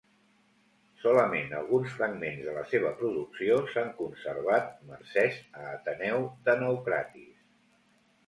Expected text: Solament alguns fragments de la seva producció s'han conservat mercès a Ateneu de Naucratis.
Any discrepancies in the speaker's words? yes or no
no